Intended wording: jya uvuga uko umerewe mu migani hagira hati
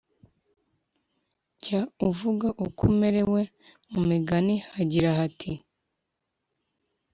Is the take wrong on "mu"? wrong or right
right